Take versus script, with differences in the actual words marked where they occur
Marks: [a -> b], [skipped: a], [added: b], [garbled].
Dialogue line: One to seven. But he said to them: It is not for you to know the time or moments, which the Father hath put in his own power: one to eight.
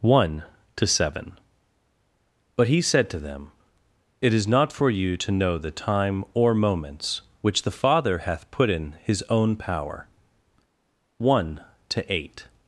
One to seven. But he said to them: It is not for you to know the time or moments, which the Father hath put in his own power: one to eight.